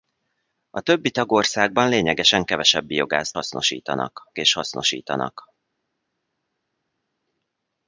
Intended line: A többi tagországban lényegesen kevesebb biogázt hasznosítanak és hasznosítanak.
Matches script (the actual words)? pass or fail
pass